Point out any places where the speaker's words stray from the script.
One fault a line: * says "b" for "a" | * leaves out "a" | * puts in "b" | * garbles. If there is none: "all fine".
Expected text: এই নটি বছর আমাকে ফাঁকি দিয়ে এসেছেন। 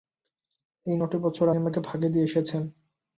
all fine